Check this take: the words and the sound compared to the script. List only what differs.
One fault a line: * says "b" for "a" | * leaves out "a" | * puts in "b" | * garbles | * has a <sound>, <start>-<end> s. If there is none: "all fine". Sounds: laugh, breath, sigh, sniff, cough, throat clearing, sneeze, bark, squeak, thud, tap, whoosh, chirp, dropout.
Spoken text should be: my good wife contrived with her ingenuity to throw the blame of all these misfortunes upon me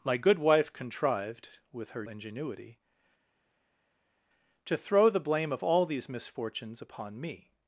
all fine